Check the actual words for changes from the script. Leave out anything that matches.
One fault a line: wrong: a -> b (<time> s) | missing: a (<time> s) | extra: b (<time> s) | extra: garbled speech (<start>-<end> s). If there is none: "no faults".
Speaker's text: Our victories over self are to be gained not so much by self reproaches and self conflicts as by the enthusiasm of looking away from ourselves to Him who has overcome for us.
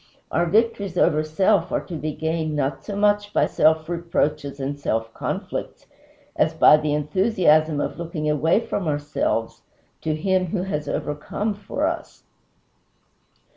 no faults